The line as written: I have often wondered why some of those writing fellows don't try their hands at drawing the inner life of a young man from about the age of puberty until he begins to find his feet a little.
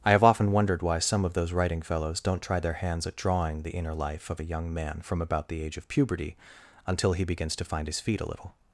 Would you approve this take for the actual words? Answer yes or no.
yes